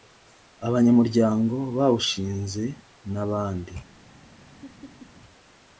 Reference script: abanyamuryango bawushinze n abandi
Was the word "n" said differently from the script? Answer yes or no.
no